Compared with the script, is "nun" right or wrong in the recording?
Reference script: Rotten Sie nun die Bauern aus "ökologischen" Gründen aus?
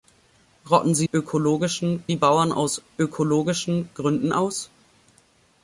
wrong